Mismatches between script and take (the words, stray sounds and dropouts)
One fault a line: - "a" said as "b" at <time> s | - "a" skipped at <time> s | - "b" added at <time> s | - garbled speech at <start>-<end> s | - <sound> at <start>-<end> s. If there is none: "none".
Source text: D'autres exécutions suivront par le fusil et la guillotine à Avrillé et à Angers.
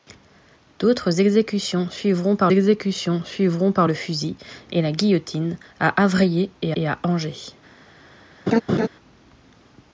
- "exécutions suivront par" added at 2.5 s
- "et" added at 6.8 s
- laugh at 8.5-8.9 s